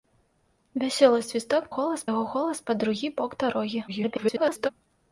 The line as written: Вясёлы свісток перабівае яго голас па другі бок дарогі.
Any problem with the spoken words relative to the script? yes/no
yes